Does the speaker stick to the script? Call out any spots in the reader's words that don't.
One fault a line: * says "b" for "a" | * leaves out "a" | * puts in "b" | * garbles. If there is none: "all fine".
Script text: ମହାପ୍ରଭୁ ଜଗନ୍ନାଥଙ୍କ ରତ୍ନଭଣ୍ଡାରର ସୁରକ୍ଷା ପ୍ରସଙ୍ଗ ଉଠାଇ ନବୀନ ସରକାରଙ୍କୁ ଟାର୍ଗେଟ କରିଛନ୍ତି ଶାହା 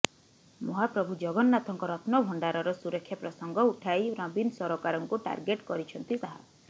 all fine